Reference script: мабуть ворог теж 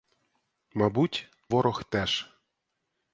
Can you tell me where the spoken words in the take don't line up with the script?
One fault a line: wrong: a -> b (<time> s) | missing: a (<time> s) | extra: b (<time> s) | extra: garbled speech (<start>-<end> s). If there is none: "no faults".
no faults